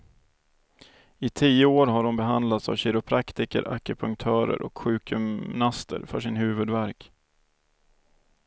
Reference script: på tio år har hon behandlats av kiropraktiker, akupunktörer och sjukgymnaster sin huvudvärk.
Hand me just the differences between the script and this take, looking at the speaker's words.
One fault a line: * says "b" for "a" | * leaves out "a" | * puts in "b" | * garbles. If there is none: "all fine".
* says "I" for "på"
* puts in "för"